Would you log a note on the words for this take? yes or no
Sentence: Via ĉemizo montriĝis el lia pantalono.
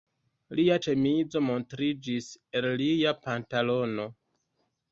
yes